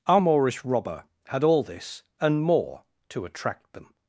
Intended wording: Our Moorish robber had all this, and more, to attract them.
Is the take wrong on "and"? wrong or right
right